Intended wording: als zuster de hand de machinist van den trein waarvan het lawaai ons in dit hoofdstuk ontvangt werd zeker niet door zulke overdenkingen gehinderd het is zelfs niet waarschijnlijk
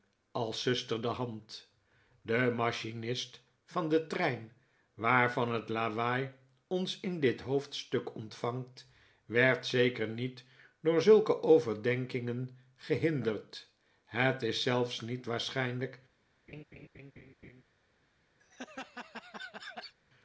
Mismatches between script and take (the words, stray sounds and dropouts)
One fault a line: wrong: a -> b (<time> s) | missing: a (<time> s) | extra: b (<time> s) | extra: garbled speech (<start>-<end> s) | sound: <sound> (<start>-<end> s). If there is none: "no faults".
sound: laugh (16.5-17.6 s)
sound: laugh (18.4-19.9 s)